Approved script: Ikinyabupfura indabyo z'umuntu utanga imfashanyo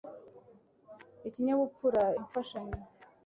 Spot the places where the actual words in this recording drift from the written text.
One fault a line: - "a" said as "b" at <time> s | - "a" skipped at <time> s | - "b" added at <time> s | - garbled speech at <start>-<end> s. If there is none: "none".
- "indabyo z'umuntu utanga" skipped at 2.0 s